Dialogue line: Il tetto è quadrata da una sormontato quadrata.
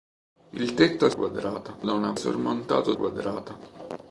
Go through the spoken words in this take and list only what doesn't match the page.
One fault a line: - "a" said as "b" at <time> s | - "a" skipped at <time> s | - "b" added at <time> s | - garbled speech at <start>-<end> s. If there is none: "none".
none